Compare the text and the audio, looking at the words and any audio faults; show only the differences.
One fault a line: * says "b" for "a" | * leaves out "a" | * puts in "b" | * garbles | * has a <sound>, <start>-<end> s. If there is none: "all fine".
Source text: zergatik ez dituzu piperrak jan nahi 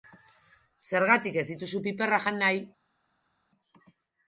all fine